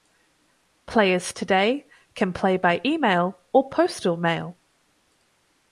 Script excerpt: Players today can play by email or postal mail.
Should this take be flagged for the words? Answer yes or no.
no